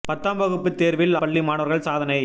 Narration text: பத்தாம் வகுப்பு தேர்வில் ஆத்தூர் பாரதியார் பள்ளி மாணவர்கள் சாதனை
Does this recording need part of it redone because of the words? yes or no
yes